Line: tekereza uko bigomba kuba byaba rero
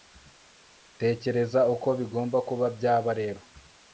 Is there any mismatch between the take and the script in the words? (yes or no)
no